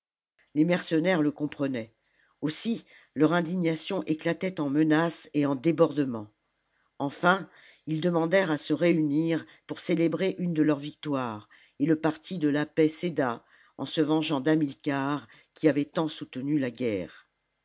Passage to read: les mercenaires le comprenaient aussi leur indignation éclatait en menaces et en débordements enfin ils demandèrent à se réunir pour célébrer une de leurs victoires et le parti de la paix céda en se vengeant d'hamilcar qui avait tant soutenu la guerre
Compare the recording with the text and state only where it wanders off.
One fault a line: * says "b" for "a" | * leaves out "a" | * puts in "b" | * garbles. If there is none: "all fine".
all fine